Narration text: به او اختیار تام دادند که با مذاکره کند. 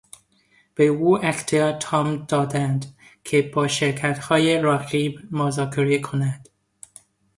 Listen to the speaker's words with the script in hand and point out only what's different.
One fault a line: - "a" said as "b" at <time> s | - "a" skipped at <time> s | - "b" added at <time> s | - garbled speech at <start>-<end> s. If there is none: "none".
- "شرکتهای رقیب" added at 3.7 s